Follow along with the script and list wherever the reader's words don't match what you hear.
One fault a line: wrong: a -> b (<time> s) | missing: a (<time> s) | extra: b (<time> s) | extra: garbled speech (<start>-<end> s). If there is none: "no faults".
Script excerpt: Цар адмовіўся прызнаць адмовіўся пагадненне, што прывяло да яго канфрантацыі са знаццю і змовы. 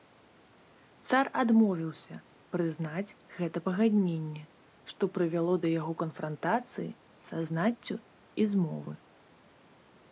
wrong: адмовіўся -> гэта (3.4 s)